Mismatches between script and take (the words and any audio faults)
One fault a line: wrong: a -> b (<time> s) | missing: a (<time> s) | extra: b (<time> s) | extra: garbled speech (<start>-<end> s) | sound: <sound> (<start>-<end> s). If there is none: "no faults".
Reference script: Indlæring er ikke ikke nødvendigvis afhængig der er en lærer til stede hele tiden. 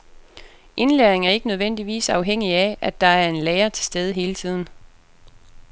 missing: ikke (1.5 s)
extra: af at (2.5 s)